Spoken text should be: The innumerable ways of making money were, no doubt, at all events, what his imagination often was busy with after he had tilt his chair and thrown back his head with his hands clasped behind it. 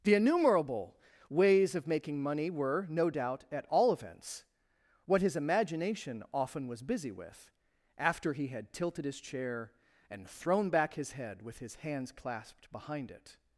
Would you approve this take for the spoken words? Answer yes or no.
no